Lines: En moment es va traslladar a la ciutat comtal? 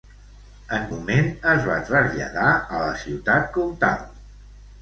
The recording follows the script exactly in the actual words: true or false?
true